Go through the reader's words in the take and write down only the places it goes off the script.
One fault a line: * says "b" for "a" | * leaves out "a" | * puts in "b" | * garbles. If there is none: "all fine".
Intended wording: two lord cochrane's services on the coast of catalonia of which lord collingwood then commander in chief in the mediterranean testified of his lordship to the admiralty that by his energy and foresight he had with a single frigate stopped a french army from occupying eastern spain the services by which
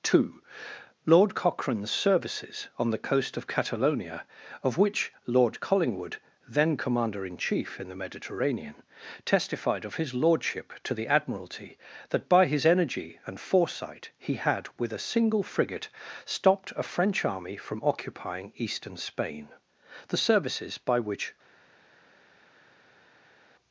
all fine